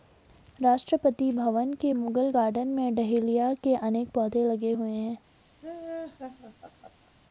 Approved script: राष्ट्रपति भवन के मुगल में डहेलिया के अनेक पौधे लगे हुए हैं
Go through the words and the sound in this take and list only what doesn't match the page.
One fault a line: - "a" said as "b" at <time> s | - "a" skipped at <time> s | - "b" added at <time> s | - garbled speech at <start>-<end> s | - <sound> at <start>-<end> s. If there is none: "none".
- "गार्डन" added at 2.3 s
- laugh at 5.6-7.1 s